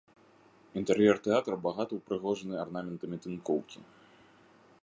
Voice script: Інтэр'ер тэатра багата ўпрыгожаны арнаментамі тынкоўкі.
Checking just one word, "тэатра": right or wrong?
right